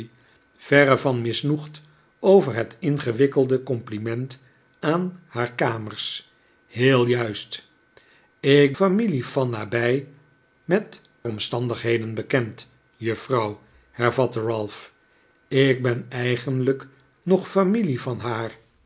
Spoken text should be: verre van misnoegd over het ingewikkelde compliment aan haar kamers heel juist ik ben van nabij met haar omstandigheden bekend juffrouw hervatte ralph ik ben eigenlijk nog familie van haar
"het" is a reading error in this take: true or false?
false